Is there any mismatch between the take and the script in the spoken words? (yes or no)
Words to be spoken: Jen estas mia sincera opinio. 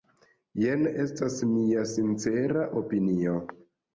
no